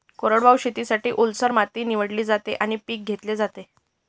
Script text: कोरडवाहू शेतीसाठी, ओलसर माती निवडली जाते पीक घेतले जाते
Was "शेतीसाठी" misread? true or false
false